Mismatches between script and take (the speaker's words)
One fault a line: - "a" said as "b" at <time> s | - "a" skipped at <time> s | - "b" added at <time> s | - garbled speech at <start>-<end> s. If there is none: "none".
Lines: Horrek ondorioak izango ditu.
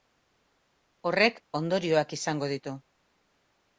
none